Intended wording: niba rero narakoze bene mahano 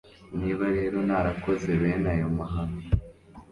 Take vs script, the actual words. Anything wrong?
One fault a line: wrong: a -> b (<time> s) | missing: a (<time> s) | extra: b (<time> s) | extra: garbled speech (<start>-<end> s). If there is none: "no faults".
extra: ayo (2.1 s)